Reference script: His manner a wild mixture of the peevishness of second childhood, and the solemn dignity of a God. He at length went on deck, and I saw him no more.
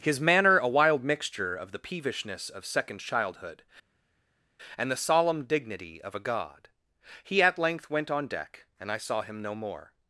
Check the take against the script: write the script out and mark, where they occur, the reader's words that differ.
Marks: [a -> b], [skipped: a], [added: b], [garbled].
His manner a wild mixture of the peevishness of second childhood, and the solemn dignity of a God. He at length went on deck, and I saw him no more.